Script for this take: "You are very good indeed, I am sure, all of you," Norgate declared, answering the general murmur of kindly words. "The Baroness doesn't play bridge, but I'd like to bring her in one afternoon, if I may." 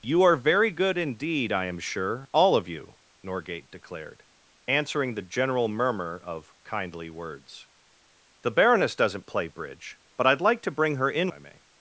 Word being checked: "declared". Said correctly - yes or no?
yes